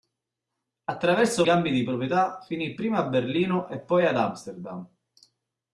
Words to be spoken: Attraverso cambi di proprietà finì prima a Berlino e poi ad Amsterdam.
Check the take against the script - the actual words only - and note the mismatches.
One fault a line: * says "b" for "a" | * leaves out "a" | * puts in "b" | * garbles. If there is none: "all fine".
all fine